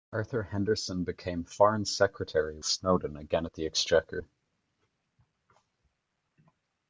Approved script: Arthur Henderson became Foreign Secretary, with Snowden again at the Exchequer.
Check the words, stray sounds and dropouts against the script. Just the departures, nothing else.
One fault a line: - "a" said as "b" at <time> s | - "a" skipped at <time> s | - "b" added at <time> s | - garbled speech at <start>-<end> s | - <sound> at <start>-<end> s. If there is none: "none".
- "with" skipped at 2.6 s